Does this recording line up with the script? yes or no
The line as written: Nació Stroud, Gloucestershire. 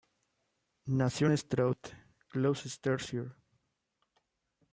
no